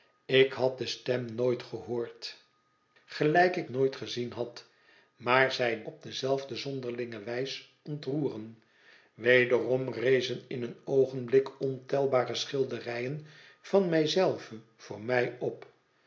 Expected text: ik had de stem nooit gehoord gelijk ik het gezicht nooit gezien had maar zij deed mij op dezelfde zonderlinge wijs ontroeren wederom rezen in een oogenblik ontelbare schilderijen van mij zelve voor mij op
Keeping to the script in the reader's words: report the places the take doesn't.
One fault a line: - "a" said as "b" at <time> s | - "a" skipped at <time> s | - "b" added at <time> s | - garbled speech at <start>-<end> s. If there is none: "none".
- "het gezicht" skipped at 3.7 s
- "deed mij" skipped at 5.8 s